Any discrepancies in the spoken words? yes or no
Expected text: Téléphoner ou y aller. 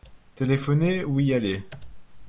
no